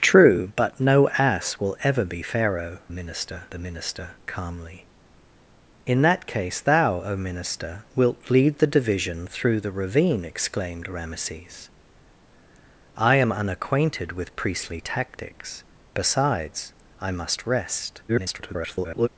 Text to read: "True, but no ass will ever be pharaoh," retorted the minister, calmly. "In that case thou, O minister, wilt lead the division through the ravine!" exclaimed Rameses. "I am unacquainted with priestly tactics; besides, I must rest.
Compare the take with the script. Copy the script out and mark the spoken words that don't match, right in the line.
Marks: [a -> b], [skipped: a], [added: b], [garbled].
"True, but no ass will ever be pharaoh," [retorted -> minister] the minister, calmly. "In that case thou, O minister, wilt lead the division through the ravine!" exclaimed Rameses. "I am unacquainted with priestly tactics; besides, I must rest. [garbled]